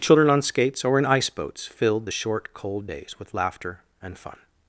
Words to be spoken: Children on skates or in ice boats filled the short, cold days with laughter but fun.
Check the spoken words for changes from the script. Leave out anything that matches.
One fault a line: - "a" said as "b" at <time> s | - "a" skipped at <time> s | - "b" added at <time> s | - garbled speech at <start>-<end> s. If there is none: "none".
- "but" said as "and" at 4.0 s